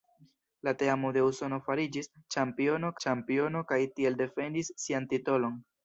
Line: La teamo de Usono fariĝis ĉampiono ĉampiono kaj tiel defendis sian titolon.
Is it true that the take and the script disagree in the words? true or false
false